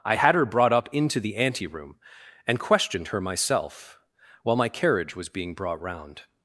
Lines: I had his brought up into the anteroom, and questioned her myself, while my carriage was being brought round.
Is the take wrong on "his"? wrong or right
wrong